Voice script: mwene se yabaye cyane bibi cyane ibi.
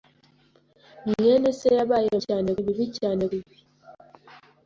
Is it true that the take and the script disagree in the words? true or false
false